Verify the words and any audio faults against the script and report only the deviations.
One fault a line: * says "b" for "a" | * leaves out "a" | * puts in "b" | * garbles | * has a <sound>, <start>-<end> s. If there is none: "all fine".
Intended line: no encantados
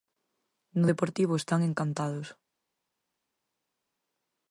* puts in "deportivo están"